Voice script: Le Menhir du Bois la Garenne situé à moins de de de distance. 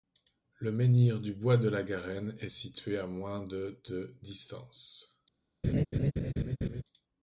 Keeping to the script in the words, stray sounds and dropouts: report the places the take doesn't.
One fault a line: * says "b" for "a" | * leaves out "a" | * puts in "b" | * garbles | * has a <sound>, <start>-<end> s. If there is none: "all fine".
* puts in "de"
* puts in "est"
* leaves out "de"
* has a laugh, 5.6-6.8 s